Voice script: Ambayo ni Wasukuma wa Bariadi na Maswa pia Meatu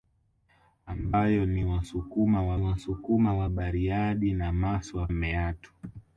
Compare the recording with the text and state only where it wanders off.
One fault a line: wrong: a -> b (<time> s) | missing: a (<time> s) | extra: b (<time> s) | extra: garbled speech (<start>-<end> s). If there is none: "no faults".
extra: Wasukuma wa (2.6 s)
missing: pia (5.1 s)